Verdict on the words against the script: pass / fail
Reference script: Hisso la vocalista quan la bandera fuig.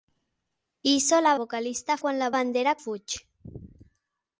pass